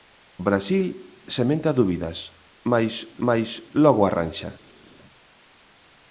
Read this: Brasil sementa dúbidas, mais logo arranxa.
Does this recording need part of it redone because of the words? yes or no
yes